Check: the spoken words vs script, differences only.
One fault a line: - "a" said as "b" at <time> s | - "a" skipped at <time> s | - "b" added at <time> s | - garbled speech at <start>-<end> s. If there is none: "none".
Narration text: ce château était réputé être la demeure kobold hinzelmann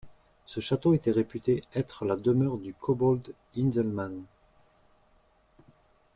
- "du" added at 2.6 s